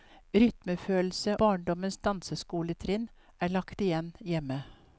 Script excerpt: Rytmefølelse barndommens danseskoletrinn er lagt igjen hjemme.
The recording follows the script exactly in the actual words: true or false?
true